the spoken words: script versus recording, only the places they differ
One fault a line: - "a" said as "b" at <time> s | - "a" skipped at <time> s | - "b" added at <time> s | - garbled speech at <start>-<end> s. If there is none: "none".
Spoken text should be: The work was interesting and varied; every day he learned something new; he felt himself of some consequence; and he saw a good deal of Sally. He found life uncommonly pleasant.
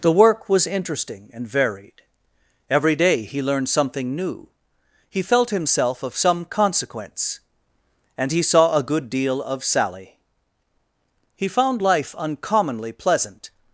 none